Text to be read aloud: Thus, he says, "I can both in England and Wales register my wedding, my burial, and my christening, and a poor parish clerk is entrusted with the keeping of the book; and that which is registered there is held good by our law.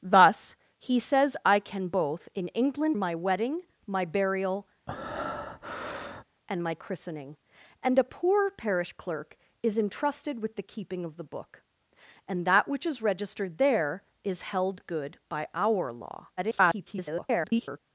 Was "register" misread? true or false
true